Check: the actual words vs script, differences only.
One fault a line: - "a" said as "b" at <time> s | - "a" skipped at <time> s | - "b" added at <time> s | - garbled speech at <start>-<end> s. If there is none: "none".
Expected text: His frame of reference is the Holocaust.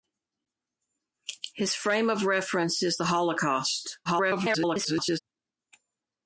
- garbled speech at 4.0-5.2 s